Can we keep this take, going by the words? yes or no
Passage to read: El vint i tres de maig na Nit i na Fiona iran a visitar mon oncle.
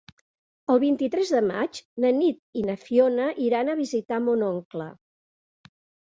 yes